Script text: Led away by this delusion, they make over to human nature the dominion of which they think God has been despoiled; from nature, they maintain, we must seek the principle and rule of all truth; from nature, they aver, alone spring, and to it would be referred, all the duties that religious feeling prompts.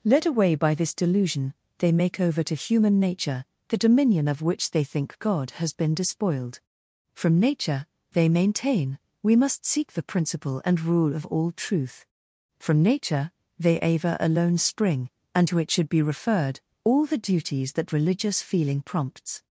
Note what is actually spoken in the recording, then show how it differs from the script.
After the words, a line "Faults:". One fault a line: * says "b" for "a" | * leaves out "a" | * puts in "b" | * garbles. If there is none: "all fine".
Led away by this delusion, they make over to human nature the dominion of which they think God has been despoiled; from nature, they maintain, we must seek the principle and rule of all truth; from nature, they aver, alone spring, and to it should be referred, all the duties that religious feeling prompts.
Faults:
* says "should" for "would"